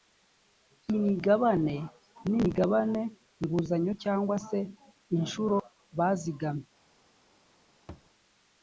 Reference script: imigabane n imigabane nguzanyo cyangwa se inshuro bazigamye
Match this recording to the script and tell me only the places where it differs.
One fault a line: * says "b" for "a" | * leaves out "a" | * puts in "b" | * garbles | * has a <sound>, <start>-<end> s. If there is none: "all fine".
* has a thud, 7.9-8.1 s